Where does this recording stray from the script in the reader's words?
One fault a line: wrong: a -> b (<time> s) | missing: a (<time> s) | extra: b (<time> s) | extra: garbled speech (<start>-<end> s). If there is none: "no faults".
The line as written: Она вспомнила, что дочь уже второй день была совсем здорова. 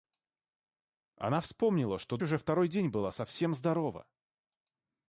missing: дочь (2.2 s)